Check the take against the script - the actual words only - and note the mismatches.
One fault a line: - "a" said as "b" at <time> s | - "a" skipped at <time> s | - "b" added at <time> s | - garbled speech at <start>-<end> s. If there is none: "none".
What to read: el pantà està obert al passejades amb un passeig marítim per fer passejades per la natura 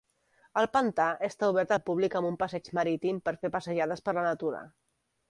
- "passejades" said as "públic" at 1.9 s